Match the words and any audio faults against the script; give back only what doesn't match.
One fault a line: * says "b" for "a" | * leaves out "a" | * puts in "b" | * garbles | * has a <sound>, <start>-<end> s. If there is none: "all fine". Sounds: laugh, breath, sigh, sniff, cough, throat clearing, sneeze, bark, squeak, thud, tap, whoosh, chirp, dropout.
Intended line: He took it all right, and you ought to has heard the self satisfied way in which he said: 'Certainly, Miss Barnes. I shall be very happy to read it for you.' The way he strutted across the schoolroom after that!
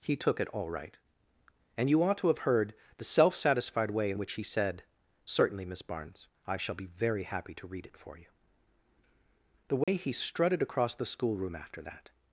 * says "have" for "has"
* has a dropout, 9.8-9.9 s